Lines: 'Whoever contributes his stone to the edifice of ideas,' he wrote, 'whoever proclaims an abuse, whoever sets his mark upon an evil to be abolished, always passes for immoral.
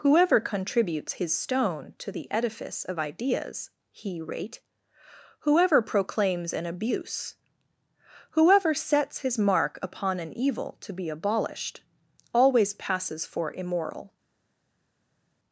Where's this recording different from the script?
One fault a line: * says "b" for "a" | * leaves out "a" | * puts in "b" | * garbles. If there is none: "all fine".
* says "rate" for "wrote"